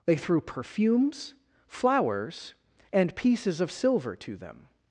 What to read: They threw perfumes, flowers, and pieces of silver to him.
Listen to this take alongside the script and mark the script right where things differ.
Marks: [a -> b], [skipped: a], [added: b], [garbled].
They threw perfumes, flowers, and pieces of silver to [him. -> them]